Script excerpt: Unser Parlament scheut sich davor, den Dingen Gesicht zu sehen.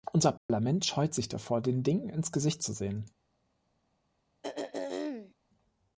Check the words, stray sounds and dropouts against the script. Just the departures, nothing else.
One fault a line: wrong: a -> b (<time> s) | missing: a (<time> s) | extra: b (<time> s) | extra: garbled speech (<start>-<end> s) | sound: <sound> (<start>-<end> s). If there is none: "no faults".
sound: dropout (0.4-0.5 s)
extra: ins (2.1 s)
sound: throat clearing (4.4-5.3 s)